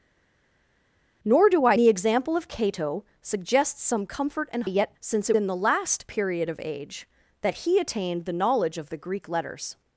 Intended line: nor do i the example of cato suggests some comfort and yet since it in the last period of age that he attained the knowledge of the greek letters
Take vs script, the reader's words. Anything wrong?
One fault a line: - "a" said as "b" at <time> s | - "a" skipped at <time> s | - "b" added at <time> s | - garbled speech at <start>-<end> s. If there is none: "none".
none